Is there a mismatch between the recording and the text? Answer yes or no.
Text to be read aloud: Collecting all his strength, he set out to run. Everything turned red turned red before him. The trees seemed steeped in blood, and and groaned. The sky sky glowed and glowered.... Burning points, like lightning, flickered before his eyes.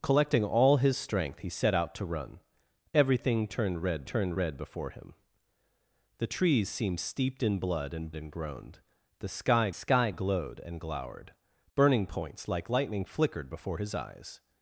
no